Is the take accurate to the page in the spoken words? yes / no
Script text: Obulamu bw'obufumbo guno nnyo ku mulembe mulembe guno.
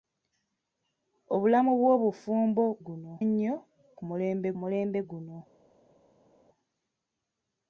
yes